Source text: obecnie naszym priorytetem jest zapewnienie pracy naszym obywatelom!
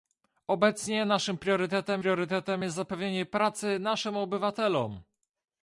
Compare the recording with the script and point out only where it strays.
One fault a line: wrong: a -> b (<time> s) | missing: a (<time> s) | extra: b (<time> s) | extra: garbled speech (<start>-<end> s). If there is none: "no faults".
extra: priorytetem (1.9 s)